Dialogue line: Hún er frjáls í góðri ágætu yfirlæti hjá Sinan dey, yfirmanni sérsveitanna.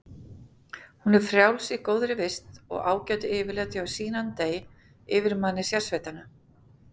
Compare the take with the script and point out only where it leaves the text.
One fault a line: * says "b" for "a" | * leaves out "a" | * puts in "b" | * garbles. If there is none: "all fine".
* puts in "vist og"